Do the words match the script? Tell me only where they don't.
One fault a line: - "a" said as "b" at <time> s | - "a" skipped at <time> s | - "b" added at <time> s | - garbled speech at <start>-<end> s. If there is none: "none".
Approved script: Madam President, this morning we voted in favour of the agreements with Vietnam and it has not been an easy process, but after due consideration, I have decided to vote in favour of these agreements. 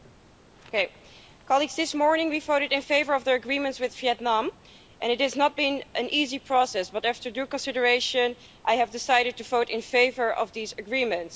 none